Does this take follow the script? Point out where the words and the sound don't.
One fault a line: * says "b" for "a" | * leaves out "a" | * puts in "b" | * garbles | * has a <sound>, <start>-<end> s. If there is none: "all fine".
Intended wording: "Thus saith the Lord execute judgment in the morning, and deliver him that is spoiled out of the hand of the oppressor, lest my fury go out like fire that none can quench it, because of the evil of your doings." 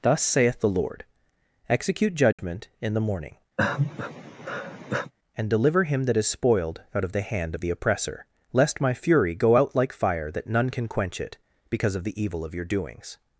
* has a dropout, 2.3-2.4 s
* has a sigh, 3.6-5.1 s